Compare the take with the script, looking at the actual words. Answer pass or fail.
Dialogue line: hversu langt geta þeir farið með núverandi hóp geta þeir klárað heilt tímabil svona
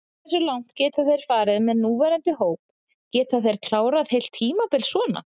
pass